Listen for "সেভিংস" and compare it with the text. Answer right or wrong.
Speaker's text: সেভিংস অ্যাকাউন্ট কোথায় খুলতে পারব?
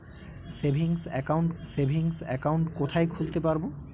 right